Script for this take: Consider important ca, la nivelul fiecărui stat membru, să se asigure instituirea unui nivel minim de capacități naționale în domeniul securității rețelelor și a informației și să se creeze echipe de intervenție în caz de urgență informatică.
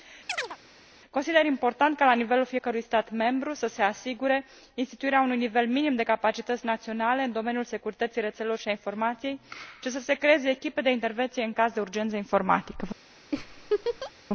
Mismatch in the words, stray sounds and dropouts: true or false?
true